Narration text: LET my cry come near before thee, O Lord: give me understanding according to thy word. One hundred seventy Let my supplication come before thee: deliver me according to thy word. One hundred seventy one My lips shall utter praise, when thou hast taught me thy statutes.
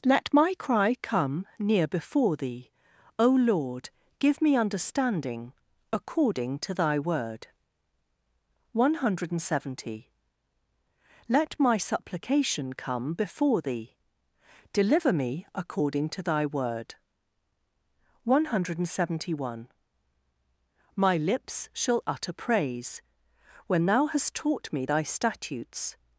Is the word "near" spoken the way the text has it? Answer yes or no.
yes